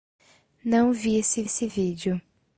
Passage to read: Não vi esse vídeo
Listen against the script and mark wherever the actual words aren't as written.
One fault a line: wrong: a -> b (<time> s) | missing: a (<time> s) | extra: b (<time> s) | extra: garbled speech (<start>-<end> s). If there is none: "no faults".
extra: esse (1.4 s)